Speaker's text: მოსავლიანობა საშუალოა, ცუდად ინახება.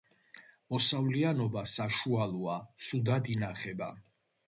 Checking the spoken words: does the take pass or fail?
pass